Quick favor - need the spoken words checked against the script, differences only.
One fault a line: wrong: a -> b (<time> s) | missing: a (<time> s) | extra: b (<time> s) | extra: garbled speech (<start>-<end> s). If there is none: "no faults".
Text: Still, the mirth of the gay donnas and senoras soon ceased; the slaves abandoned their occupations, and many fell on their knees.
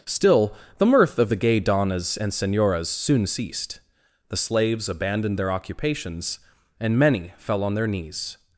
no faults